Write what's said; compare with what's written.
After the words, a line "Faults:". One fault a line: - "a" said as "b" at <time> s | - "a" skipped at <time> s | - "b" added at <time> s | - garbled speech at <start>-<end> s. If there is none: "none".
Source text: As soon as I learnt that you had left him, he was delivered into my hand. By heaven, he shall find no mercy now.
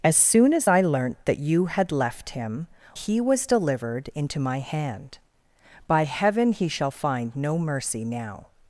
As soon as I learnt that you had left him, he was delivered into my hand. By heaven, he shall find no mercy now.
Faults:
none